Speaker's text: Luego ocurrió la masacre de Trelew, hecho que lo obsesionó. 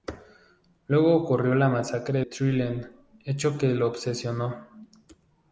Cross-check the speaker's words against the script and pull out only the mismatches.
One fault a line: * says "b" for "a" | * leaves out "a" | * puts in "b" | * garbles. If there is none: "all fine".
* leaves out "de"